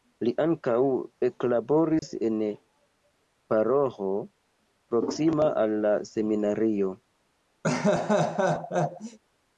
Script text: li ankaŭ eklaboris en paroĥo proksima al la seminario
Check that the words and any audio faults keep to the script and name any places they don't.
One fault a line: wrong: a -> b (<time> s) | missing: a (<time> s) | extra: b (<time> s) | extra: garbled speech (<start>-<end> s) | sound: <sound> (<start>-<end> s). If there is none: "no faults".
sound: dropout (2.0-2.0 s)
sound: laugh (7.6-9.2 s)